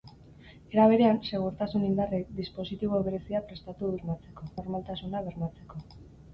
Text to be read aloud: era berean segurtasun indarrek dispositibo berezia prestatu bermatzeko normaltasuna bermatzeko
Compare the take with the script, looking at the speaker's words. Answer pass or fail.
pass